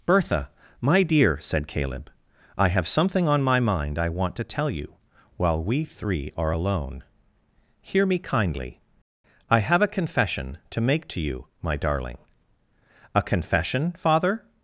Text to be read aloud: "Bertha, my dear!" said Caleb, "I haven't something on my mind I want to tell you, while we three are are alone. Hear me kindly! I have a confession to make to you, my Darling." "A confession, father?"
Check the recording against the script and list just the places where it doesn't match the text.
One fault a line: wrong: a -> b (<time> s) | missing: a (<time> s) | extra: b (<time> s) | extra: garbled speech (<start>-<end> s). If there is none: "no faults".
wrong: haven't -> have (2.7 s)
missing: are (6.5 s)